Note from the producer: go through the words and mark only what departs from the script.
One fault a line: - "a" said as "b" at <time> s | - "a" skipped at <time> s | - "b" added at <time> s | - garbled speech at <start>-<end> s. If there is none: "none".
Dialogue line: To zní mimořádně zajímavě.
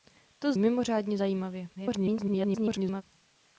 - "zní" skipped at 0.5 s
- garbled speech at 1.7-3.0 s